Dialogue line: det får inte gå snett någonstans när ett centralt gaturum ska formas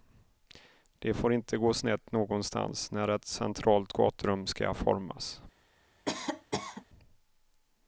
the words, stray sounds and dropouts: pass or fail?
fail